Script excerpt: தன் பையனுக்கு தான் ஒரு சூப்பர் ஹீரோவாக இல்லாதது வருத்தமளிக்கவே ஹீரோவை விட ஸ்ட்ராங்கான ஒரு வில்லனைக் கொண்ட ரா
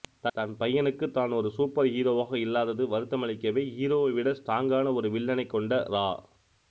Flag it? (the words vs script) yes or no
no